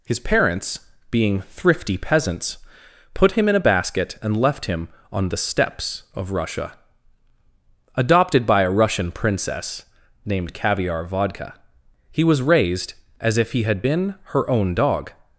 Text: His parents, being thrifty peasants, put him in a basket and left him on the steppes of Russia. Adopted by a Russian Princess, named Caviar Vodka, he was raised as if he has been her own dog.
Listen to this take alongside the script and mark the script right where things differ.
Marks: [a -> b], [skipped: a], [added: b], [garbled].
His parents, being thrifty peasants, put him in a basket and left him on the steppes of Russia. Adopted by a Russian Princess, named Caviar Vodka, he was raised as if he [has -> had] been her own dog.